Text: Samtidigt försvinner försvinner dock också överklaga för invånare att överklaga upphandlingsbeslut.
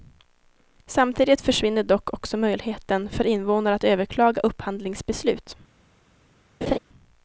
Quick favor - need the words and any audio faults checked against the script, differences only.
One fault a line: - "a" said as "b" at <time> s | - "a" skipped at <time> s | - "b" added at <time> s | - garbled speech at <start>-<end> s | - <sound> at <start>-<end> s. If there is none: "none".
- "försvinner" skipped at 1.8 s
- "överklaga" said as "möjligheten" at 2.4 s
- laugh at 6.6-6.8 s